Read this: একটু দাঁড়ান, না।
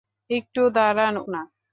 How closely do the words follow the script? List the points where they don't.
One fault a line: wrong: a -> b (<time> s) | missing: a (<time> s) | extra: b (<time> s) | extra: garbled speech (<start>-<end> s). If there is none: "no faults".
no faults